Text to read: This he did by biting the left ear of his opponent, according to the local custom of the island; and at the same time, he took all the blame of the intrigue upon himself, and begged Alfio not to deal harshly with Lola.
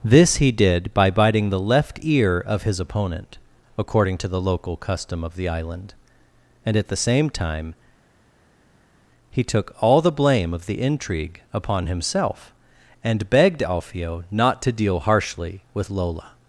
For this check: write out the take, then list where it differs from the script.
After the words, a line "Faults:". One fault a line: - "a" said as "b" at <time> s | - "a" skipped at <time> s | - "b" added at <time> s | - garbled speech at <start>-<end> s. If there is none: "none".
This he did by biting the left ear of his opponent, according to the local custom of the island; and at the same time, he took all the blame of the intrigue upon himself, and begged Alfio not to deal harshly with Lola.
Faults:
none